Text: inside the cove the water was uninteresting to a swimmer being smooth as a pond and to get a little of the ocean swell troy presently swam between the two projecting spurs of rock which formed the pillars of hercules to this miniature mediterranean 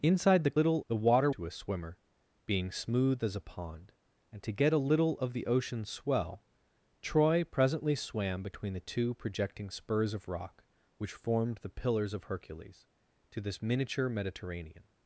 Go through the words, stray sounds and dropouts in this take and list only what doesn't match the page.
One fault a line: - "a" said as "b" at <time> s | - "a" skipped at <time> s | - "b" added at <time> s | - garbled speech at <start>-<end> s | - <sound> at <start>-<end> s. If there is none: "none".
- "cove" said as "little" at 0.5 s
- "was uninteresting" skipped at 1.3 s